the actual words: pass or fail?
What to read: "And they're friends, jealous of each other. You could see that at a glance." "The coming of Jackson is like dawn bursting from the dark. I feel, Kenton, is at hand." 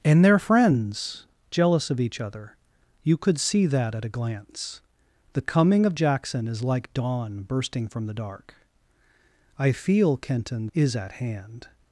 pass